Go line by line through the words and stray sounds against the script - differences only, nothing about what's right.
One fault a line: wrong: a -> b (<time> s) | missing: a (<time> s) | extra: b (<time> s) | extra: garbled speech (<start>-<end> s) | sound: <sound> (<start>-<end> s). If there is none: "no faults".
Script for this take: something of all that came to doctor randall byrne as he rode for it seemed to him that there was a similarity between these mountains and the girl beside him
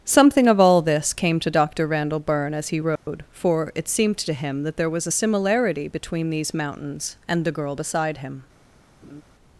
wrong: that -> this (0.8 s)
sound: dropout (3.0-3.1 s)
sound: laugh (9.0-9.2 s)